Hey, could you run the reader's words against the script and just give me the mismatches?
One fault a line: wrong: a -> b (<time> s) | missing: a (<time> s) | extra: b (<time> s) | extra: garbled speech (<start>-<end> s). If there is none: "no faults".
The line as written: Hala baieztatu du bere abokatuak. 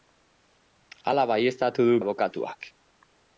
missing: bere (2.0 s)